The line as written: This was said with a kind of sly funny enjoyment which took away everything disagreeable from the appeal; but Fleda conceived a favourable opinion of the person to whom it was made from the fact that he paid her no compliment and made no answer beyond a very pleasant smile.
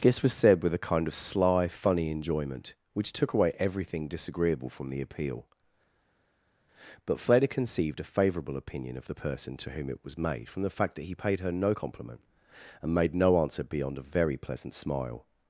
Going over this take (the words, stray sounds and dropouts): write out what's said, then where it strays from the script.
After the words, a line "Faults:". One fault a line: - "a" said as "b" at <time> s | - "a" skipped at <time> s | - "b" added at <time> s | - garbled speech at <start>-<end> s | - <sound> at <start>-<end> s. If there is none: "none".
This was said with a kind of sly funny enjoyment which took away everything disagreeable from the appeal; but Fleda conceived a favourable opinion of the person to whom it was made from the fact that he paid her no compliment and made no answer beyond a very pleasant smile.
Faults:
none